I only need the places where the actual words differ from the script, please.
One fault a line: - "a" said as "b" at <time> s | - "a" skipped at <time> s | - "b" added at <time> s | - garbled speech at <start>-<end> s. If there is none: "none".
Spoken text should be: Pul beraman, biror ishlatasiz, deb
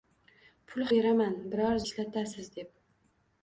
none